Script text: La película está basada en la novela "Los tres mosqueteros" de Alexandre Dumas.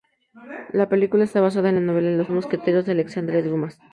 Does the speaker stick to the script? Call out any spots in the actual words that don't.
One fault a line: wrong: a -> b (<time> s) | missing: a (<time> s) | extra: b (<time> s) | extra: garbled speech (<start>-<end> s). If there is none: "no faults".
missing: tres (2.3 s)